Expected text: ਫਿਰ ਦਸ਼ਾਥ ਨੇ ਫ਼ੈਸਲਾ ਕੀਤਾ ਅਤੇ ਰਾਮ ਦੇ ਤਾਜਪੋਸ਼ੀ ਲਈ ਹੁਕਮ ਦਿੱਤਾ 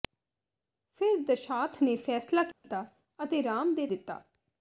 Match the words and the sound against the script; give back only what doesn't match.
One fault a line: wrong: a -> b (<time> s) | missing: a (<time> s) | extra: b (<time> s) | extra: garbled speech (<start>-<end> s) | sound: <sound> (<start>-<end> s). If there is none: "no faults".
sound: dropout (2.5-2.6 s)
missing: ਤਾਜਪੋਸ਼ੀ ਲਈ ਹੁਕਮ (3.9 s)